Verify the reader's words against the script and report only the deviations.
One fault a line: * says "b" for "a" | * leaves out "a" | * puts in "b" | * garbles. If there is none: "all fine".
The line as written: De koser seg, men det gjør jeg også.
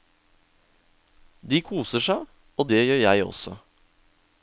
* says "og" for "men"